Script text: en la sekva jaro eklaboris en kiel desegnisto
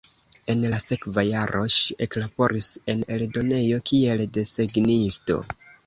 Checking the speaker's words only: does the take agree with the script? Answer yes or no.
no